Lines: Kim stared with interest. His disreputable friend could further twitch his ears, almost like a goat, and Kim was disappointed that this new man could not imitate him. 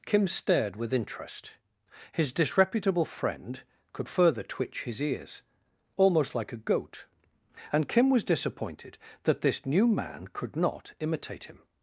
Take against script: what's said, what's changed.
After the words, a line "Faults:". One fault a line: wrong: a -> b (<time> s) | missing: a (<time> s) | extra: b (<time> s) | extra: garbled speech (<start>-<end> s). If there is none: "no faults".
Kim stared with interest. His disreputable friend could further twitch his ears, almost like a goat, and Kim was disappointed that this new man could not imitate him.
Faults:
no faults